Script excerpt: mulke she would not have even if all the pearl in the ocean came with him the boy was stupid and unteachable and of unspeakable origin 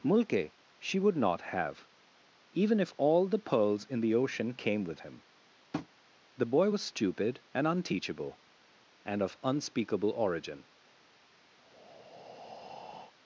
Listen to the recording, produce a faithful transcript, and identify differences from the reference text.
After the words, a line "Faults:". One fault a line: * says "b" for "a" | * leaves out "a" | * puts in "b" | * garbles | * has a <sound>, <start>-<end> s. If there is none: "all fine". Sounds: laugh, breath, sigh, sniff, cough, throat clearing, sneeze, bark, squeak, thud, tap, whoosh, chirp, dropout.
mulke she would not have even if all the pearls in the ocean came with him the boy was stupid and unteachable and of unspeakable origin
Faults:
* says "pearls" for "pearl"
* has a tap, 5.7-5.9 s
* has a breath, 11.6-13.1 s